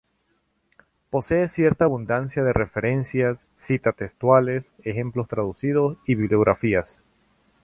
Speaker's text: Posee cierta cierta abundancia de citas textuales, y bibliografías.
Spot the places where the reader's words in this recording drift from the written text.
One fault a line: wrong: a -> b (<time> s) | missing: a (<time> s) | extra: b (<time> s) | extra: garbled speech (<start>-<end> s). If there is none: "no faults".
missing: cierta (1.9 s)
extra: referencias (2.5 s)
extra: ejemplos traducidos (4.8 s)